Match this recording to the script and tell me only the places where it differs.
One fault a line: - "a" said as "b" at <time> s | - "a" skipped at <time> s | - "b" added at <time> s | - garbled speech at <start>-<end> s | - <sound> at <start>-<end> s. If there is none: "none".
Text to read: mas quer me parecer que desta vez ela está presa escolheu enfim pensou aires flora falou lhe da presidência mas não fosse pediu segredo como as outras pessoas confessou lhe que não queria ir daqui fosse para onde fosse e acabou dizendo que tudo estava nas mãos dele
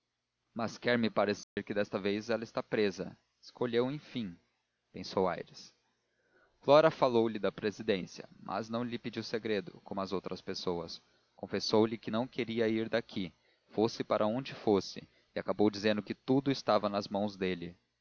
- dropout at 1.4-1.6 s
- "fosse" said as "lhe" at 8.8 s